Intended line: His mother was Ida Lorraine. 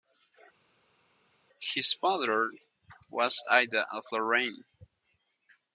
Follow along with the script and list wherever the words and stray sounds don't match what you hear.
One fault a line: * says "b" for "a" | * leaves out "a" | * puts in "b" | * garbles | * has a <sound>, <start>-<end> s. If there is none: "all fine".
* puts in "of"